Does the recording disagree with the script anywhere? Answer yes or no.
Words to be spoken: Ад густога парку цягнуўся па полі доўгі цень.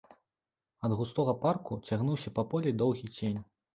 no